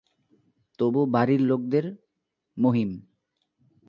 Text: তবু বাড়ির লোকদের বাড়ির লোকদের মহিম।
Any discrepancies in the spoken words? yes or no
yes